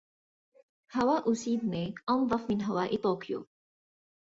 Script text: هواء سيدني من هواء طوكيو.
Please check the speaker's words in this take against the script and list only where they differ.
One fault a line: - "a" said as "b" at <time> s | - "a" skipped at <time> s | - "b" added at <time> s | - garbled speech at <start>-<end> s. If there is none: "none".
- "أنظف" added at 2.1 s